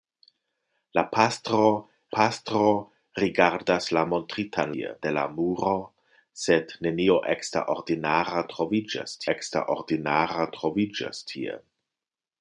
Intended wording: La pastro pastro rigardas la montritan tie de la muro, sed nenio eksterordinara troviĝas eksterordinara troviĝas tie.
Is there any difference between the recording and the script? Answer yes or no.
no